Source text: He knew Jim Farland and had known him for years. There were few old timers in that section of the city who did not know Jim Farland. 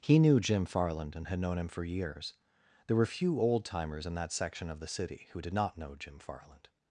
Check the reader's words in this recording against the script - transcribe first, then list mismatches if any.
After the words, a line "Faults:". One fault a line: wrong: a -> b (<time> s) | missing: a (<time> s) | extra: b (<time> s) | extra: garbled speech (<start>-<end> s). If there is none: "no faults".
He knew Jim Farland and had known him for years. There were few old timers in that section of the city who did not know Jim Farland.
Faults:
no faults